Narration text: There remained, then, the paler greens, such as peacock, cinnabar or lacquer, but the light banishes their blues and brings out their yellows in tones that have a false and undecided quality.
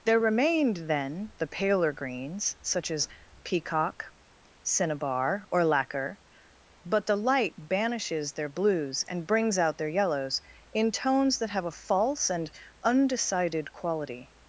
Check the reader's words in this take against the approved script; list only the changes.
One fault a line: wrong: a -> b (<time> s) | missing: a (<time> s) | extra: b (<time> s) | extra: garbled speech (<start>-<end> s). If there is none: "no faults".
no faults